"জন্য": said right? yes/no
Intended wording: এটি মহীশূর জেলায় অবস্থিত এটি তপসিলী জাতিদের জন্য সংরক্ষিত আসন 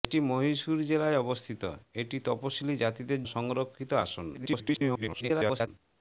no